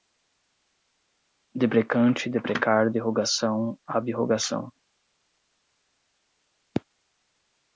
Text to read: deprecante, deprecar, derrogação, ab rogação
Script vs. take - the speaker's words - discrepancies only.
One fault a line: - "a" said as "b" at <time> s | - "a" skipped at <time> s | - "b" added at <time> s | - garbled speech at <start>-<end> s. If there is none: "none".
none